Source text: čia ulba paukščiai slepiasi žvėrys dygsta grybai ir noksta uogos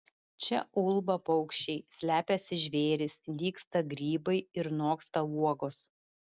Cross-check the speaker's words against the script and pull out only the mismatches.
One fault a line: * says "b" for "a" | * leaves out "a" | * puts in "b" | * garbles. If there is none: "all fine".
all fine